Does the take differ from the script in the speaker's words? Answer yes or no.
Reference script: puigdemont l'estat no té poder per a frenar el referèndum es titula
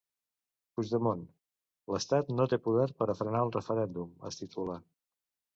no